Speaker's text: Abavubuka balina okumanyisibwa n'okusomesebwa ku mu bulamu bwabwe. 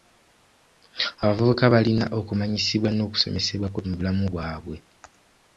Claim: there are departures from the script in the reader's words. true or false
false